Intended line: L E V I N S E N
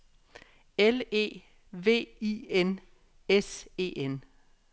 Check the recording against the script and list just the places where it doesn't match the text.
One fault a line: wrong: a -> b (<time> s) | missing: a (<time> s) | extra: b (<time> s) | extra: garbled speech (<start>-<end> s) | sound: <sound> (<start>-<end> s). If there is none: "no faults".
no faults